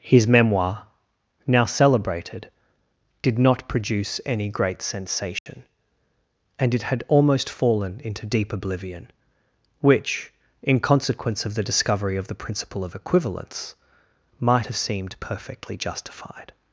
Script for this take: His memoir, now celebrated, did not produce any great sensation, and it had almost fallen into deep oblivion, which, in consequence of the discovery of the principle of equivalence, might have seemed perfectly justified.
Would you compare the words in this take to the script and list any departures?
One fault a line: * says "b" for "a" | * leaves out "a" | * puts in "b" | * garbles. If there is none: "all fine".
all fine